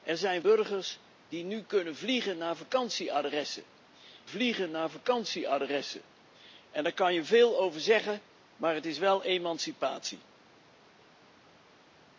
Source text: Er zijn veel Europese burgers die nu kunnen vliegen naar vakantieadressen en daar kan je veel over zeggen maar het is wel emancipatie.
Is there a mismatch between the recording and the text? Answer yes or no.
yes